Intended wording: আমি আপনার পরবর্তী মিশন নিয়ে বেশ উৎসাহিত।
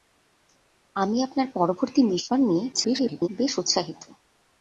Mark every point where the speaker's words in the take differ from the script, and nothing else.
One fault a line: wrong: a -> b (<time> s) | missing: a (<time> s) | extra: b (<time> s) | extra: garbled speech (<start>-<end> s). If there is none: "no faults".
extra: garbled speech (2.7-3.3 s)